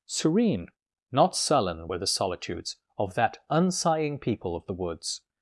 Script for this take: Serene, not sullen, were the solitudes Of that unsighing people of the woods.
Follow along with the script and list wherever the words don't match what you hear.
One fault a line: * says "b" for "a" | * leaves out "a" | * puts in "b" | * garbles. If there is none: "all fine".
all fine